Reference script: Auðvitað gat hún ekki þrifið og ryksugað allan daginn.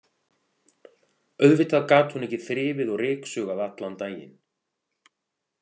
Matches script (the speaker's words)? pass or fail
pass